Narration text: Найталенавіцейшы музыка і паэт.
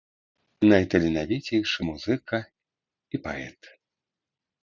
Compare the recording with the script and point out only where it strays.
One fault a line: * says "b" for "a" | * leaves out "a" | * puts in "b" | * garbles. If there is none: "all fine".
all fine